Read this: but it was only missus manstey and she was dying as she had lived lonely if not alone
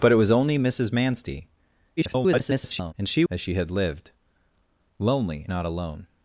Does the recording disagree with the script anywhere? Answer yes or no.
yes